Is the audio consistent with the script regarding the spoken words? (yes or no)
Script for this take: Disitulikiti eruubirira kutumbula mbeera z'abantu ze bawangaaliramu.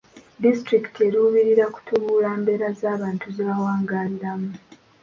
yes